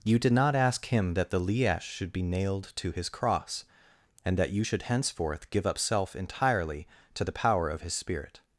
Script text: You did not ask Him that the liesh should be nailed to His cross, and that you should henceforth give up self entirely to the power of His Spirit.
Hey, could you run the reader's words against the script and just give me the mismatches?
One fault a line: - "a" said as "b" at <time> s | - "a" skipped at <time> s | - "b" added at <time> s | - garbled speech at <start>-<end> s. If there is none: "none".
none